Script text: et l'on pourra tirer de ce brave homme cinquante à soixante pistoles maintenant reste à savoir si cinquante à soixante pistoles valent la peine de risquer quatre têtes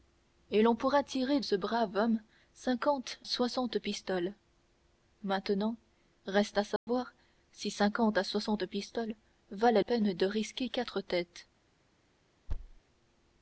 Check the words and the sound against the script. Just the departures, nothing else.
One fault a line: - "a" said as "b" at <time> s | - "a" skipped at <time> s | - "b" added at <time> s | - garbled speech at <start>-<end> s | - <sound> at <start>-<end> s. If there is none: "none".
- "de" skipped at 1.4 s
- "à" skipped at 3.2 s
- dropout at 6.8-6.9 s
- "la" skipped at 9.8 s
- thud at 12.5-12.8 s